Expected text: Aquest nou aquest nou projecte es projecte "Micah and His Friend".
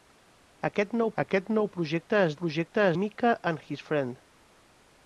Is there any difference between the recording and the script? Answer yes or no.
no